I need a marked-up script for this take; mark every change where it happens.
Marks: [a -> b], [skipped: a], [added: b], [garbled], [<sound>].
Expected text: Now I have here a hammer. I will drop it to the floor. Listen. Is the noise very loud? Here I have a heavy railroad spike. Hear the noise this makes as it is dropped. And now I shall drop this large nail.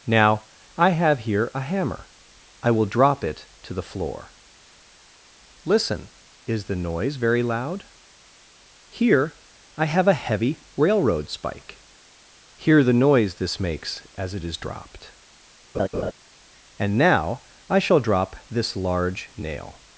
Now I have here a hammer. I will drop it to the floor. Listen. Is the noise very loud? Here I have a heavy railroad spike. Hear the noise this makes as it is dropped. [laugh] And now I shall drop this large nail.